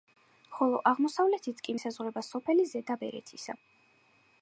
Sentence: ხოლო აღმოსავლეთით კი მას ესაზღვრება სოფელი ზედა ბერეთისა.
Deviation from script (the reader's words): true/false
true